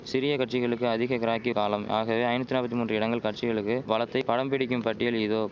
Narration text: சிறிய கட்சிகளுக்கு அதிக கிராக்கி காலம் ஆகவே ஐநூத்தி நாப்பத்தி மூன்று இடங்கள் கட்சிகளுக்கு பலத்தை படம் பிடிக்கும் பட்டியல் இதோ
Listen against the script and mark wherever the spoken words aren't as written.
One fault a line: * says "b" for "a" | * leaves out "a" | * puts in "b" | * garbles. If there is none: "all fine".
all fine